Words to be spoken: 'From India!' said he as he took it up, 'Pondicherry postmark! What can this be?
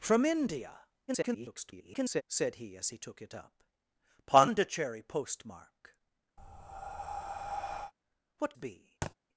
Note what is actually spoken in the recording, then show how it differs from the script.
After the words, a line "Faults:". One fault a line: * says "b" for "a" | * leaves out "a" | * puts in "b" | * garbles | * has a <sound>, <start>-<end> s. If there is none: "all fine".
'From India!' [garbled] said he as he took it up, 'Pondicherry postmark! What be?
Faults:
* garbles
* has a breath, 6.4-7.9 s
* leaves out "can this"
* has a thud, 9.0-9.1 s